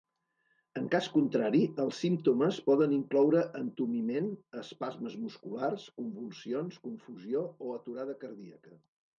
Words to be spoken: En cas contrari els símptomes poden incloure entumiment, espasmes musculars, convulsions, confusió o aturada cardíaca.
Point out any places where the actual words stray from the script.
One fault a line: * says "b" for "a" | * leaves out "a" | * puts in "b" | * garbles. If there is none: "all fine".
all fine